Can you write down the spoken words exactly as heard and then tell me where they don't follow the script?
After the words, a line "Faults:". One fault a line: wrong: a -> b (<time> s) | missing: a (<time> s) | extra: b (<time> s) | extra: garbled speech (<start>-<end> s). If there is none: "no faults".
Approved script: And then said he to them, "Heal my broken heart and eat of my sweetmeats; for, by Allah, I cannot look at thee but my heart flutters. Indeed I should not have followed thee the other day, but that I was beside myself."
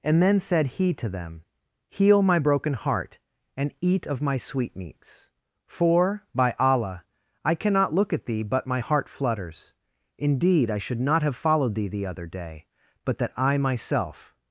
And then said he to them, "Heal my broken heart and eat of my sweetmeats; for, by Allah, I cannot look at thee but my heart flutters. Indeed I should not have followed thee the other day, but that I myself."
Faults:
missing: was beside (13.6 s)